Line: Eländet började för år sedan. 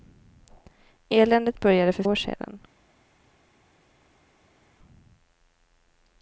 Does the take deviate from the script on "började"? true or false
false